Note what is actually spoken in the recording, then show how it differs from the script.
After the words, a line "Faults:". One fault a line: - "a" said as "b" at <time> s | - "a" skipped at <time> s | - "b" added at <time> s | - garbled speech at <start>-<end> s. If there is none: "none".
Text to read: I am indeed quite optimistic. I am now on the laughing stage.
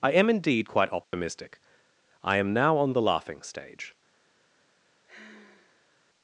I am indeed quite optimistic. I am now on the laughing stage.
Faults:
none